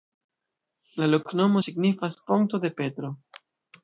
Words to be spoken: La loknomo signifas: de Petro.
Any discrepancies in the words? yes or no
yes